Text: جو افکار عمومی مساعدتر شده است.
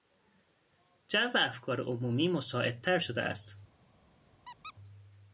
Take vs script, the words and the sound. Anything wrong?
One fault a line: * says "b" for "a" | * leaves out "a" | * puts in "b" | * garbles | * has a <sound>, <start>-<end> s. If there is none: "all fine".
* has a squeak, 4.4-4.7 s